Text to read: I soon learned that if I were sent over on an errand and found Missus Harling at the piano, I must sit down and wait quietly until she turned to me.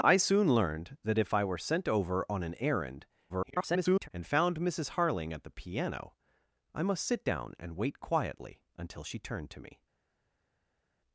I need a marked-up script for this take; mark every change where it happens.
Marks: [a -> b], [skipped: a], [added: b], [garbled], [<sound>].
I soon learned that if I were sent over on an errand [garbled] and found Missus Harling at the piano, I must sit down and wait quietly until she turned to me.